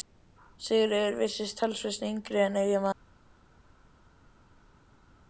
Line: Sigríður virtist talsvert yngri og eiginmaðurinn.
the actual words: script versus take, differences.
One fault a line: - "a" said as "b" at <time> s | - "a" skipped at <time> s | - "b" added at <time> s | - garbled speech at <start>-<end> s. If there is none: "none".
- "og" said as "en" at 2.5 s